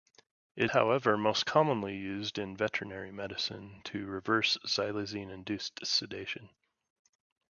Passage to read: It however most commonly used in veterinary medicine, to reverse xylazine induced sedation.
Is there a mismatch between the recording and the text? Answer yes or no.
no